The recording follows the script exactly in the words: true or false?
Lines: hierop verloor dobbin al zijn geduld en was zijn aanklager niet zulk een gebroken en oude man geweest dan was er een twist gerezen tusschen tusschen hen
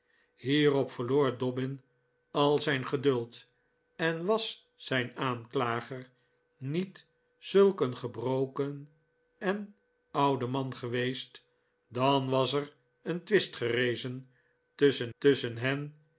true